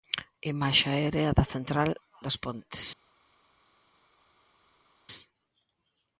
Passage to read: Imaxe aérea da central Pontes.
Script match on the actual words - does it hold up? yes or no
no